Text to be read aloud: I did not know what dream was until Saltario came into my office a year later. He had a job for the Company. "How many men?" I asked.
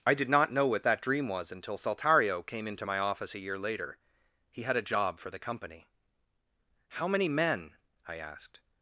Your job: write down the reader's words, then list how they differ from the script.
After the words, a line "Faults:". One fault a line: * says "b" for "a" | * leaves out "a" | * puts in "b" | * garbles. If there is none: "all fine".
I did not know what that dream was until Saltario came into my office a year later. He had a job for the Company. "How many men?" I asked.
Faults:
* puts in "that"